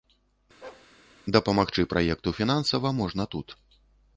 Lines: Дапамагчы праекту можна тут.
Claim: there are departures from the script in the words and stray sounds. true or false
true